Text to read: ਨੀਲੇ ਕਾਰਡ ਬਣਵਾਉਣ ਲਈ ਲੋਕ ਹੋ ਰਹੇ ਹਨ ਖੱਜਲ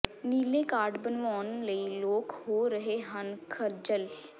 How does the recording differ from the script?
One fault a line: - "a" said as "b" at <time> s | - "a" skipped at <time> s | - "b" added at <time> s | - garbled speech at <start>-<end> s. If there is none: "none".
none